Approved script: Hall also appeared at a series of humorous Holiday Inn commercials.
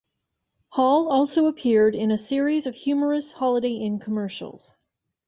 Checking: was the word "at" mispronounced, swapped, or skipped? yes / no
yes